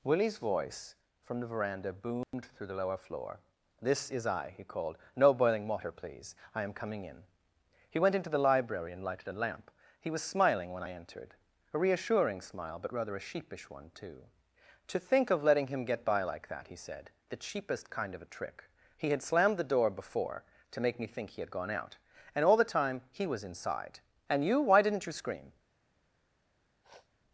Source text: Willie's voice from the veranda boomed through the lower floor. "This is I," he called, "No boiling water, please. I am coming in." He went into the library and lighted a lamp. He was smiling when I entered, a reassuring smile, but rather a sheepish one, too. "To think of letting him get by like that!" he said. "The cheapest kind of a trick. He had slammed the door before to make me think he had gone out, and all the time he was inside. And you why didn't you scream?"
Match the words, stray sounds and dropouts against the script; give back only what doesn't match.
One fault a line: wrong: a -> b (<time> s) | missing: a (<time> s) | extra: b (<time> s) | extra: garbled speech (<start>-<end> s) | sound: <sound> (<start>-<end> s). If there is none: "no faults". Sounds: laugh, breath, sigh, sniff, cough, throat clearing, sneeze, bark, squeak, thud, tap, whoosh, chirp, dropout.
sound: dropout (2.2-2.3 s)
sound: sniff (26.8-27.1 s)